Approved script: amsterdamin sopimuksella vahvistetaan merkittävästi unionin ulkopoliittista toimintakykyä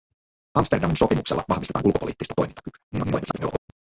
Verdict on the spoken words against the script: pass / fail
fail